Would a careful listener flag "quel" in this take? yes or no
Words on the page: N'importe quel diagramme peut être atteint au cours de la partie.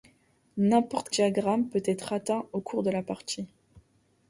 yes